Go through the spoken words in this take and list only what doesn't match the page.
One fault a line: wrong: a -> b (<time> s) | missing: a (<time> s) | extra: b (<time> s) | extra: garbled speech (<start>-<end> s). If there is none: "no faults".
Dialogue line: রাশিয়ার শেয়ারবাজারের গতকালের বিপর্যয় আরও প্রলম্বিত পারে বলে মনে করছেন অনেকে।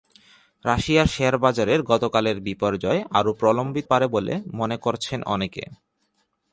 no faults